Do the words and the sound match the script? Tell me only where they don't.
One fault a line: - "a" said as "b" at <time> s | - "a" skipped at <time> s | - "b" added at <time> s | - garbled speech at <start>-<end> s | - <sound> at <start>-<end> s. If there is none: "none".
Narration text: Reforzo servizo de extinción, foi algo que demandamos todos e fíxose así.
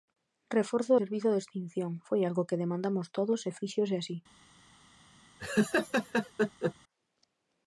- laugh at 5.4-6.7 s